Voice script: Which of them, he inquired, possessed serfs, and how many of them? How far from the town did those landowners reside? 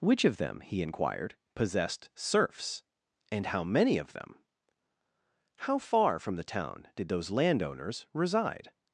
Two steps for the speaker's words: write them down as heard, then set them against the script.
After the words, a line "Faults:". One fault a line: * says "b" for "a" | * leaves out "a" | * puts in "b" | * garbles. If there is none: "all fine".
Which of them, he inquired, possessed serfs, and how many of them? How far from the town did those landowners reside?
Faults:
all fine